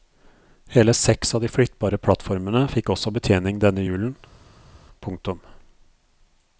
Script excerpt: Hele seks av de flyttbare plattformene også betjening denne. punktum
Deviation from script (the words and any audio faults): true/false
true